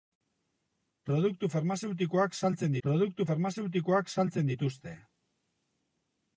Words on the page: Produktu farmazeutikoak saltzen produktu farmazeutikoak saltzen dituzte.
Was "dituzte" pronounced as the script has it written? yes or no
yes